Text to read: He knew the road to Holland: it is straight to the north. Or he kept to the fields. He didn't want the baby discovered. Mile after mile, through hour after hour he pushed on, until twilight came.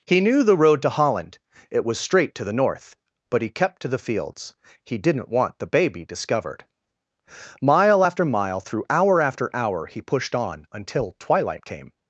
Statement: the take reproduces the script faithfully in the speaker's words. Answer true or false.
false